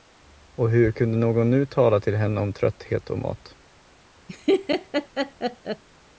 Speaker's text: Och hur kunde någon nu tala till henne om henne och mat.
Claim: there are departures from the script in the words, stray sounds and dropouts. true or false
true